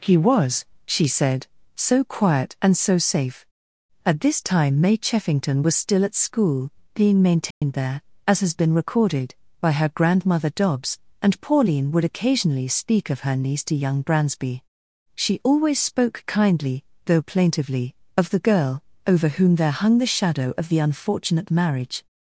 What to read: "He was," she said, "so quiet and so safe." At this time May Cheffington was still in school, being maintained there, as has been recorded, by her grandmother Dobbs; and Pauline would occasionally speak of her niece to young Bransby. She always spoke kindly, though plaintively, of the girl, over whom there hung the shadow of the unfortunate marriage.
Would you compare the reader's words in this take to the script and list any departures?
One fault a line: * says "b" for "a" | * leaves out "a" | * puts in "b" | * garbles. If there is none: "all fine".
* says "at" for "in"